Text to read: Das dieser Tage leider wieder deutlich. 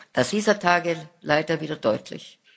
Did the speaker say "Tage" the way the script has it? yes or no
yes